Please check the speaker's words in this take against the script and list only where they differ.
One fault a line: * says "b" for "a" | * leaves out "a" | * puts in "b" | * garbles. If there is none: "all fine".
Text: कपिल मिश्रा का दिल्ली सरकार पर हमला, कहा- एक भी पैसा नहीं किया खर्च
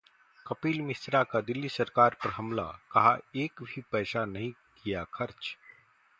all fine